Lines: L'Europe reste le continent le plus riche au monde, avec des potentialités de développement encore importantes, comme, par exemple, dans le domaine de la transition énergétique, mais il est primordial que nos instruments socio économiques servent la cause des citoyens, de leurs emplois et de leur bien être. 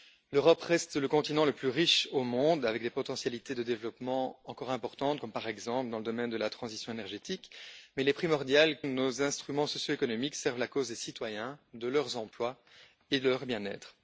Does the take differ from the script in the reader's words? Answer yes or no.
yes